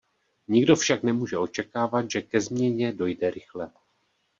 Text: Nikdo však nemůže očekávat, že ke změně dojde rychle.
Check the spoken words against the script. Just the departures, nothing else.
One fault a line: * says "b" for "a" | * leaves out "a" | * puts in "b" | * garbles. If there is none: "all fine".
all fine